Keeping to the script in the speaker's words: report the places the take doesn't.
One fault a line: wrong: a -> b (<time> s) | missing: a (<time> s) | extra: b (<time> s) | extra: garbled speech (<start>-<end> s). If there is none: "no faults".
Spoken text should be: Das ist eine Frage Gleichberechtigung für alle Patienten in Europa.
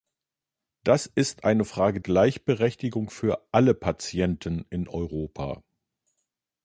no faults